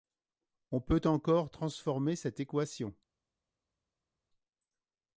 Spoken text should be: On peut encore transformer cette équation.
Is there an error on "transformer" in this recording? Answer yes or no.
no